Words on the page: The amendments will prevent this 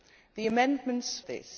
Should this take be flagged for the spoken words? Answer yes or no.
yes